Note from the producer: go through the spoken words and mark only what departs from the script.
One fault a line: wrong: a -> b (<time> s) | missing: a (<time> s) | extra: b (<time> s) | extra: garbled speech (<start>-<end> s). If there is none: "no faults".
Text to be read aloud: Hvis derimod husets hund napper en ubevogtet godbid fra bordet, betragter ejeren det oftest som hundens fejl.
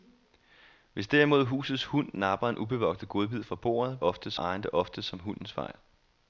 wrong: betragter -> oftest (4.0 s)